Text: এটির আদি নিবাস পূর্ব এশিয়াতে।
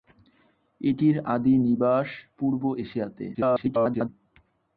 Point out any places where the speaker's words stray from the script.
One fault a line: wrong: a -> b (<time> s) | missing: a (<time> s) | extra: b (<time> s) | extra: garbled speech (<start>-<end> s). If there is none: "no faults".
extra: garbled speech (3.3-4.1 s)